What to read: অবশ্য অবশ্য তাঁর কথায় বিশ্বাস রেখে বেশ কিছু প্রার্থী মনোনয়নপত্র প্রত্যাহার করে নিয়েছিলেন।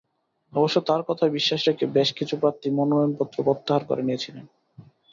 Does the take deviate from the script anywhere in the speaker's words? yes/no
yes